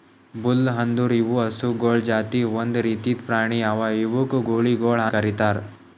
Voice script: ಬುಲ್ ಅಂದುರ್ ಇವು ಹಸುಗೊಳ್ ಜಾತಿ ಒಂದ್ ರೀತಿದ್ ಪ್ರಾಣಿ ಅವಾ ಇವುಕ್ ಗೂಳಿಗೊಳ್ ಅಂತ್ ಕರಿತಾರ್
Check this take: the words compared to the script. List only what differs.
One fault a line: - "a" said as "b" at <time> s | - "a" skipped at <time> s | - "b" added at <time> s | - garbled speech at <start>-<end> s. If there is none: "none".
- "ಅಂತ್" skipped at 5.0 s